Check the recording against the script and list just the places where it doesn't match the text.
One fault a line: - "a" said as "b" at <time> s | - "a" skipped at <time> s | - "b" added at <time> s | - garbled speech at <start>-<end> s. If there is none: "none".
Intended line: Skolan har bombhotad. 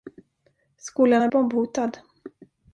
none